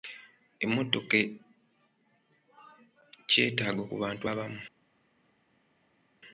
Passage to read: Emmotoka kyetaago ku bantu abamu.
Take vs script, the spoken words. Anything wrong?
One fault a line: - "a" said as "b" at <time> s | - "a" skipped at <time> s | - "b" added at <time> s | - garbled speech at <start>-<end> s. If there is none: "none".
none